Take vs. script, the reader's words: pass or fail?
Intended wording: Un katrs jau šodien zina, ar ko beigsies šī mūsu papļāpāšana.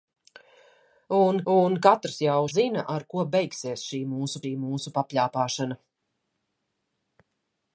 fail